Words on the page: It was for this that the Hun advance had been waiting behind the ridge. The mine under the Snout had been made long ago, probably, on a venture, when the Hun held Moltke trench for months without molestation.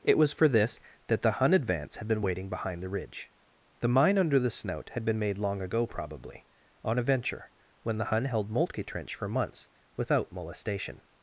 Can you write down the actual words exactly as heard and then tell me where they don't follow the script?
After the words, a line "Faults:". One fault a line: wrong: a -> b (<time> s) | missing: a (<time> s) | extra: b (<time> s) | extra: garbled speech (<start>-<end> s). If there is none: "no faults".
It was for this that the Hun advance had been waiting behind the ridge. The mine under the Snout had been made long ago, probably, on a venture, when the Hun held Moltke trench for months without molestation.
Faults:
no faults